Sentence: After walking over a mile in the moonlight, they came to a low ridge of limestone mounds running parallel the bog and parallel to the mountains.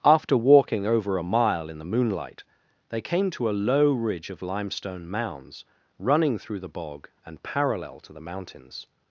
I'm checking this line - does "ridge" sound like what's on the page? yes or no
yes